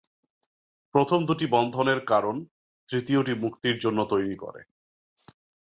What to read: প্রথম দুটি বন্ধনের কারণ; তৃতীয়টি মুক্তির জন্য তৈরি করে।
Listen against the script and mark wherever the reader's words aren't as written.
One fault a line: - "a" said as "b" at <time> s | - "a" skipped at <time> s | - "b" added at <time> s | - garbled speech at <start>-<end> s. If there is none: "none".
none